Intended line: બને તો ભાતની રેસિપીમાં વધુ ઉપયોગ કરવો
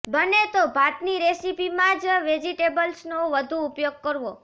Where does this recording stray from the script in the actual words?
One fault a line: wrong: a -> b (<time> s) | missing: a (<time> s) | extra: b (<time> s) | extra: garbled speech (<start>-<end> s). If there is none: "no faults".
extra: જ વેજિટેબલ્સનો (2.0 s)